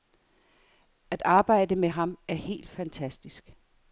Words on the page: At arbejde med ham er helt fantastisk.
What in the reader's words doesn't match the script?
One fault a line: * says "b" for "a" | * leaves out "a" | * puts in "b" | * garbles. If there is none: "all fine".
all fine